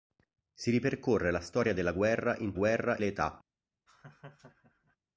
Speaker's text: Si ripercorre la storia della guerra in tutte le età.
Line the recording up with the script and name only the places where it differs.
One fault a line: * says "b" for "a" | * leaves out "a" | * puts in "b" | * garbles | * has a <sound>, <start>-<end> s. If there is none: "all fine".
* says "guerra" for "tutte"
* has a laugh, 3.9-5.0 s